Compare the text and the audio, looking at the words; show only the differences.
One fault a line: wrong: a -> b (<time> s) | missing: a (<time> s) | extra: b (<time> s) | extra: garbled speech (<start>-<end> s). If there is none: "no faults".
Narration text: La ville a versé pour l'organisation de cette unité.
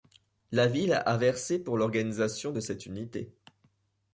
no faults